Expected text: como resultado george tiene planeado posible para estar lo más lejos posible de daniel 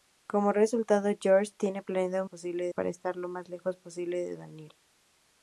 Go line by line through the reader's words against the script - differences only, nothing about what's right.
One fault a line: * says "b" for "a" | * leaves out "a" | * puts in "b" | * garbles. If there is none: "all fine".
all fine